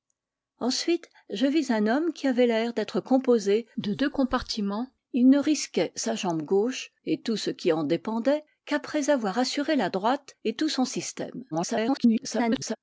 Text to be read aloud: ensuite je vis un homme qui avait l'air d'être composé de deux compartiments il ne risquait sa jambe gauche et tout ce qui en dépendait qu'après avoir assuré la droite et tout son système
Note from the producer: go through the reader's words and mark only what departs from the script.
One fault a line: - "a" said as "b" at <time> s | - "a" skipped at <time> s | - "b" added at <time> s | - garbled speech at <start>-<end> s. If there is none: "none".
- garbled speech at 11.5-12.8 s